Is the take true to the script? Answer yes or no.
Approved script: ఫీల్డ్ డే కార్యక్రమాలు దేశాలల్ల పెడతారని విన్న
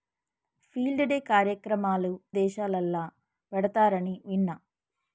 yes